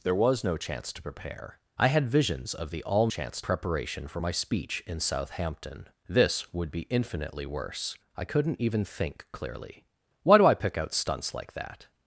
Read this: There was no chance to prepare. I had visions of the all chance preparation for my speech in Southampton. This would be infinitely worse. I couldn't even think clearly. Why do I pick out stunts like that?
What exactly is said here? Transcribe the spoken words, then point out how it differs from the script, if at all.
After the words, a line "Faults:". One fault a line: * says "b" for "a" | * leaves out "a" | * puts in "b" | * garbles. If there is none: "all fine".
There was no chance to prepare. I had visions of the all chance preparation for my speech in Southampton. This would be infinitely worse. I couldn't even think clearly. Why do I pick out stunts like that?
Faults:
all fine